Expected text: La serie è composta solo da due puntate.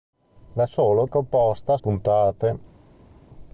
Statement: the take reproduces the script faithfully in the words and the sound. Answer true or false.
false